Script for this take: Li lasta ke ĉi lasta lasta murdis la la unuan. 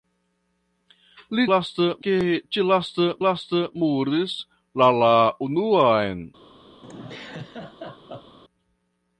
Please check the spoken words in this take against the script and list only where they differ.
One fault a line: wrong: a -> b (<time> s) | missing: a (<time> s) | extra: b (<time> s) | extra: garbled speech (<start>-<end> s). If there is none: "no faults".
no faults